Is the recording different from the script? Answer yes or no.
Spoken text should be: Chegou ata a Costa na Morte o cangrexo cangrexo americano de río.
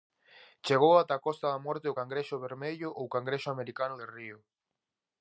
yes